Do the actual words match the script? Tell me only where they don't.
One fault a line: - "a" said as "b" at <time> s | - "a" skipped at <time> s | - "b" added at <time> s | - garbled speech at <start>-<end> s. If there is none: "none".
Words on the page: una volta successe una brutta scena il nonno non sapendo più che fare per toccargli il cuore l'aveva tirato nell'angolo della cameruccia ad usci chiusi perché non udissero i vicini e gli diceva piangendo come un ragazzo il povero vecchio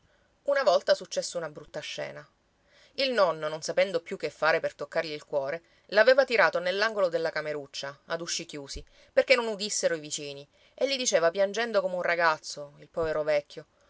none